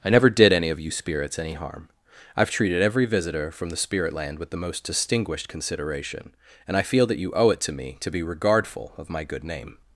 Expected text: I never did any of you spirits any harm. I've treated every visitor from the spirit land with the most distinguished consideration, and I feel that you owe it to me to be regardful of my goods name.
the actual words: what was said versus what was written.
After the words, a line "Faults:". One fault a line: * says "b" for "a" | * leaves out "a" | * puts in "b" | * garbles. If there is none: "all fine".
I never did any of you spirits any harm. I've treated every visitor from the spirit land with the most distinguished consideration, and I feel that you owe it to me to be regardful of my good name.
Faults:
* says "good" for "goods"